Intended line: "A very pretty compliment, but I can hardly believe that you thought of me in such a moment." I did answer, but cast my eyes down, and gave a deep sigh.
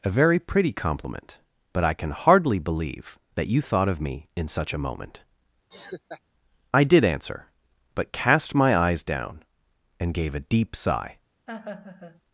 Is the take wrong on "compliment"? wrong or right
right